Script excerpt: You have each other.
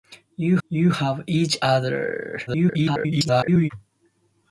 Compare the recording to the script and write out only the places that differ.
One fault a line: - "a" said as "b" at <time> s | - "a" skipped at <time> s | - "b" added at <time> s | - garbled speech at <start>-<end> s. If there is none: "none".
- "you" added at 0.7 s
- garbled speech at 2.5-3.7 s